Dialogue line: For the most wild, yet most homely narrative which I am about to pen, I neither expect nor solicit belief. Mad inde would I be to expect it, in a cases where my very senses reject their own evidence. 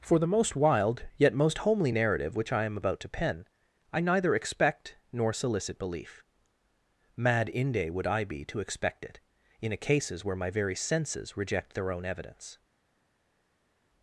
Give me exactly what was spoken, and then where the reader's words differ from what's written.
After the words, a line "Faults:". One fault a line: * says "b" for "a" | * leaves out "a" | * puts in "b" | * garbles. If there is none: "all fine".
For the most wild, yet most homely narrative which I am about to pen, I neither expect nor solicit belief. Mad inde would I be to expect it, in a cases where my very senses reject their own evidence.
Faults:
all fine